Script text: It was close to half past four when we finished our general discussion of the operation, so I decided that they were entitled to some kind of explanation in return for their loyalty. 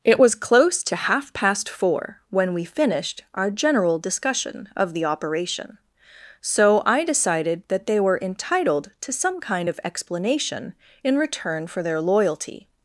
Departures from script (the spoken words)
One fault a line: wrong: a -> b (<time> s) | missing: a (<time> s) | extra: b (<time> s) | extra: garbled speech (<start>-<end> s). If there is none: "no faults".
no faults